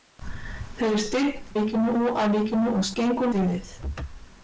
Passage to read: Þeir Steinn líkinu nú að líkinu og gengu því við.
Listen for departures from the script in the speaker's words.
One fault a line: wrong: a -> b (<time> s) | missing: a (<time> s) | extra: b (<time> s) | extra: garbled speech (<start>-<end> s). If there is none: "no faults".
no faults